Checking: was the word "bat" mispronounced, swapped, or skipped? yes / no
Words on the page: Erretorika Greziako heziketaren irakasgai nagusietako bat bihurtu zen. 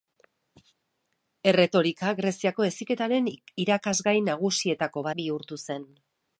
yes